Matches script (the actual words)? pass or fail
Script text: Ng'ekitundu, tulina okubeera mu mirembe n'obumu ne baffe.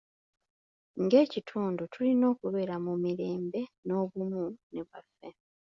pass